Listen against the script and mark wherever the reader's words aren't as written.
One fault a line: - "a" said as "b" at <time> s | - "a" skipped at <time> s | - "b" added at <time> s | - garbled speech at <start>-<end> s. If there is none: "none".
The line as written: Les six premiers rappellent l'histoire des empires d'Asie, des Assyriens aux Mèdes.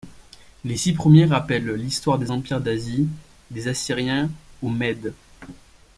none